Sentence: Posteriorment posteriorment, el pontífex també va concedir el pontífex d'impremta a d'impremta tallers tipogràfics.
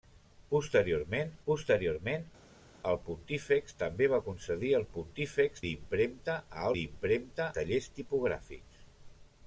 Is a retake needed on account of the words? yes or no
no